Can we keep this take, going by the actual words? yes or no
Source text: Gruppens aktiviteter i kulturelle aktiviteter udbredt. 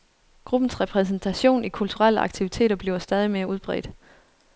no